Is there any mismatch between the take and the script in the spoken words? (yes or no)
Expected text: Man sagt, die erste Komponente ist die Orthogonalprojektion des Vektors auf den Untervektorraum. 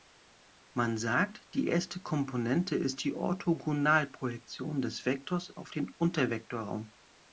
no